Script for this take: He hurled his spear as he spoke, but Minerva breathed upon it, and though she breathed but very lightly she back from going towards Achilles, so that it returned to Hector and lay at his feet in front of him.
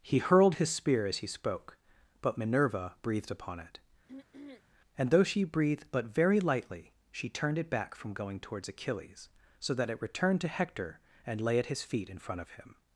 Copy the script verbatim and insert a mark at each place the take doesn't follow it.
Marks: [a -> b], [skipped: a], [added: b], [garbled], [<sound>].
He hurled his spear as he spoke, but Minerva breathed upon it, [throat clearing] and though she breathed but very lightly she [added: turned it] back from going towards Achilles, so that it returned to Hector and lay at his feet in front of him.